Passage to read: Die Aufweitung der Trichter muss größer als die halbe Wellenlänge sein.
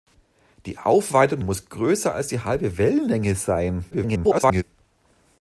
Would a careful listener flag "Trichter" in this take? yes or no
yes